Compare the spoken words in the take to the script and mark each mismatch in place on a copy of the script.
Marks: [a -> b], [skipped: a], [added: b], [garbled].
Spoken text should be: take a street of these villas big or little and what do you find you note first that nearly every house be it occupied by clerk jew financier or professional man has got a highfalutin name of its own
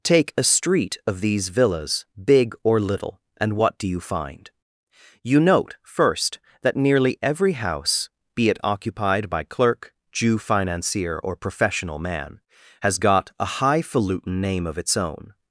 take a street of these villas big or little and what do you find you note first that nearly every house be it occupied by clerk jew financier or professional man has got a highfalutin name of its own